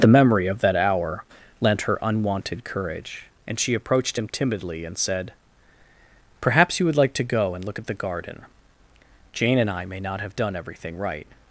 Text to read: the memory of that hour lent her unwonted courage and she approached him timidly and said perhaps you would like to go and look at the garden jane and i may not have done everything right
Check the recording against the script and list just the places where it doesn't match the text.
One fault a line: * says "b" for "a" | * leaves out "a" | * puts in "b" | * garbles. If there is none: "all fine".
all fine